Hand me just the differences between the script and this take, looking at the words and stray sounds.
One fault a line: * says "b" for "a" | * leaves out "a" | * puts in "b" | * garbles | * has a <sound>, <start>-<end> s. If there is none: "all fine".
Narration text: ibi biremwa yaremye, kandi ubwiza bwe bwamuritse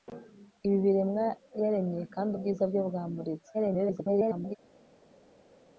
* garbles